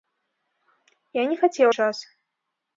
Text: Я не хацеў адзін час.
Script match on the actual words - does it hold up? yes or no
no